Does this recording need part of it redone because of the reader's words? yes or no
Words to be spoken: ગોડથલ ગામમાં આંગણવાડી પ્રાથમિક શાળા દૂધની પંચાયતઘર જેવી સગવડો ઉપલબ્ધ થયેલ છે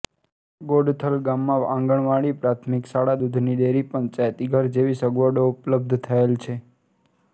yes